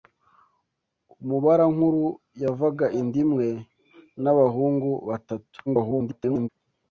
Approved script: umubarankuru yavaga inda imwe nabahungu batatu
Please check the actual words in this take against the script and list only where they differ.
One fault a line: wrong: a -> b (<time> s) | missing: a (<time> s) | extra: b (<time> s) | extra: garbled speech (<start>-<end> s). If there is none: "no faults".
extra: garbled speech (5.7-6.5 s)